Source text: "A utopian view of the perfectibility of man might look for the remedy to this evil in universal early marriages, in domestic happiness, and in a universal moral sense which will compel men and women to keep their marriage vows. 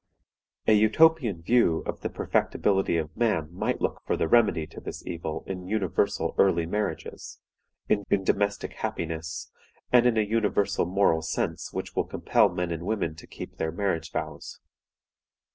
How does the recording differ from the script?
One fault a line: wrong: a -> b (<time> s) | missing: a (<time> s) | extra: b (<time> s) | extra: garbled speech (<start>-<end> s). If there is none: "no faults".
extra: in (8.1 s)